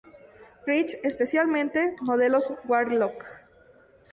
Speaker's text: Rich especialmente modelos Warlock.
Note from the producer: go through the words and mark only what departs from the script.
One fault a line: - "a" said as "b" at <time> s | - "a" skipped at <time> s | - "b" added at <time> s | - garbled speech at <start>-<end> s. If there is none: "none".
none